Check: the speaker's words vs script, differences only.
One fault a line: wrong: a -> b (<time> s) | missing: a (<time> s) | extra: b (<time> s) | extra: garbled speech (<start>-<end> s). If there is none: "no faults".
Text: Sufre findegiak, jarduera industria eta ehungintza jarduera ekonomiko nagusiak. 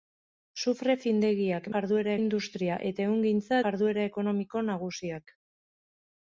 no faults